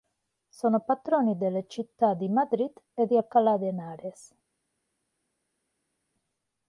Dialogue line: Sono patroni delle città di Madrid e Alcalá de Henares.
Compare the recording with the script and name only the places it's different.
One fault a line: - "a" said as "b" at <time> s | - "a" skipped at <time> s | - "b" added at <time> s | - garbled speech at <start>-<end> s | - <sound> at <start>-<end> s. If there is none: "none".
- "di" added at 3.0 s